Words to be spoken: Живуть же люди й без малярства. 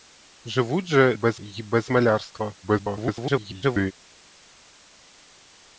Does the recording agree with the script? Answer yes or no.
no